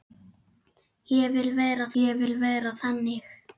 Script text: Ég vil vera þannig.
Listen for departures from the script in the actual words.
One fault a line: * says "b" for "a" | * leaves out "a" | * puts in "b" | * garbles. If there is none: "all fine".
* puts in "ég vil vera"